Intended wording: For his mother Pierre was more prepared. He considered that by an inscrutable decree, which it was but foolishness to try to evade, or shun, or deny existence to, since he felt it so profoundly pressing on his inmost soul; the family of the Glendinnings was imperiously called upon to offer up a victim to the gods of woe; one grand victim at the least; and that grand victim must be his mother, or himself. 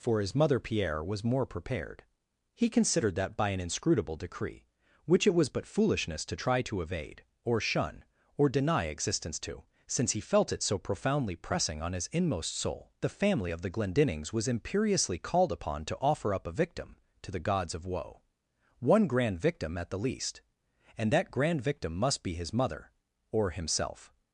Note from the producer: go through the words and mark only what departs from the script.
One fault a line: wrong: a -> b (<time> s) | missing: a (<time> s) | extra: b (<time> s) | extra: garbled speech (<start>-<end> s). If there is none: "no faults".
no faults